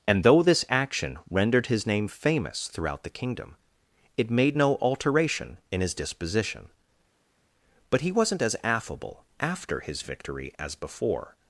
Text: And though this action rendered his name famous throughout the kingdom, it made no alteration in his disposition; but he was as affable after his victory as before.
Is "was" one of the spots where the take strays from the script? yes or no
yes